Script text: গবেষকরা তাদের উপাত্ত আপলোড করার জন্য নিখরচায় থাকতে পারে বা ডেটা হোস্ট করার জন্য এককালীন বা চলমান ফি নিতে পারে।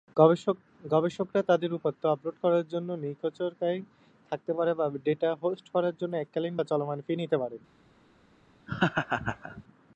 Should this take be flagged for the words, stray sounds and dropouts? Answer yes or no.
yes